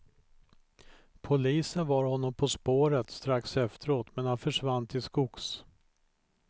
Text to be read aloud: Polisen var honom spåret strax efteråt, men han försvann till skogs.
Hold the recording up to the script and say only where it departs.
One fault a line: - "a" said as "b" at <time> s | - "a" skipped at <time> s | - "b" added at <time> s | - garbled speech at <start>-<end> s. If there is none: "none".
- "på" added at 2.3 s